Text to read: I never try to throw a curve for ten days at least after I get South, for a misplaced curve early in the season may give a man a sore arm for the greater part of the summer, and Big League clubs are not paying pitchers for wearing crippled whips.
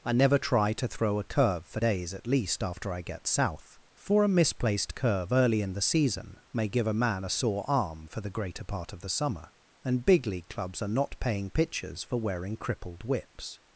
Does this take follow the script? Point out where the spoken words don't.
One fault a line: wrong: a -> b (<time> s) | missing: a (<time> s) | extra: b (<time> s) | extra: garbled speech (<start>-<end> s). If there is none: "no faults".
missing: ten (1.8 s)